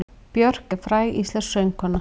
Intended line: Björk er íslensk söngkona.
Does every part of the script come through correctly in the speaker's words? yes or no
no